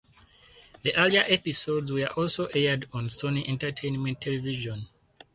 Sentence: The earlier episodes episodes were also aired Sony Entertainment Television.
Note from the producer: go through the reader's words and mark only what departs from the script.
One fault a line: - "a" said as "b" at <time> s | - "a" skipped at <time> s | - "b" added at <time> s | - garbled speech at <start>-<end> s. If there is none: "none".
- "episodes" skipped at 1.9 s
- "on" added at 2.9 s